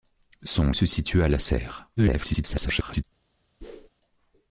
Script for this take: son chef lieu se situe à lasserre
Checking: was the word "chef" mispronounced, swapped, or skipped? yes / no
yes